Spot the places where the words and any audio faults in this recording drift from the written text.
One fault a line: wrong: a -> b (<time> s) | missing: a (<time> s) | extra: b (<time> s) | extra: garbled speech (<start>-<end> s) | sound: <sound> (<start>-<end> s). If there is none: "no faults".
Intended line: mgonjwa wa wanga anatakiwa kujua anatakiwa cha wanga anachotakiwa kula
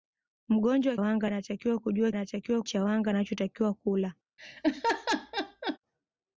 sound: laugh (4.4-5.8 s)